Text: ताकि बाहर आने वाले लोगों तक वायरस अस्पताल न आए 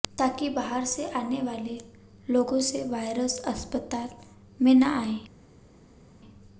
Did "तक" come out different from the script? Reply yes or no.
yes